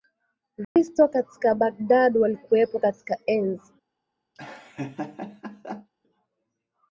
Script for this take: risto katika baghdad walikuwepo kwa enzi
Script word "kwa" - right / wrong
wrong